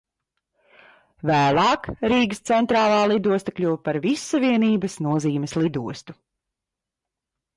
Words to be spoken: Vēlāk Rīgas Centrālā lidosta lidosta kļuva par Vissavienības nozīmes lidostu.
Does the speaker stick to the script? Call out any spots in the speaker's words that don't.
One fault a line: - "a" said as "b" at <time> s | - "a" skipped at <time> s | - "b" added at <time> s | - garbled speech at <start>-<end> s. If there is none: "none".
- "lidosta" skipped at 3.5 s